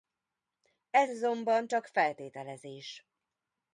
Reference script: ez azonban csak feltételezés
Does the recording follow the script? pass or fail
pass